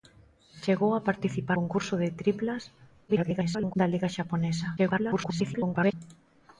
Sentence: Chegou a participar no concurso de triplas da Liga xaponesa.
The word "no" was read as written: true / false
false